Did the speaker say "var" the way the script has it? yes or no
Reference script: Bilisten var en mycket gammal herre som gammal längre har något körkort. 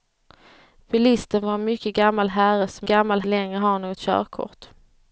yes